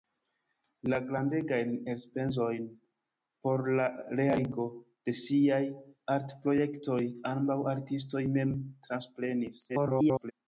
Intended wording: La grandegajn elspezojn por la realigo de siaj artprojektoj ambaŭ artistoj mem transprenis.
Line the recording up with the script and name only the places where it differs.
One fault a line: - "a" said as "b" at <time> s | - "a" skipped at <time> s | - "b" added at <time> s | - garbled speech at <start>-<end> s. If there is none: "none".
- garbled speech at 9.7-10.3 s